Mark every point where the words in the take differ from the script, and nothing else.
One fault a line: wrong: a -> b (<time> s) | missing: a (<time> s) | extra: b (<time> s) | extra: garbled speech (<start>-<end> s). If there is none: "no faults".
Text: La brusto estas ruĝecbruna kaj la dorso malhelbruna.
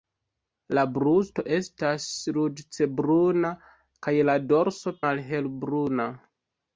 no faults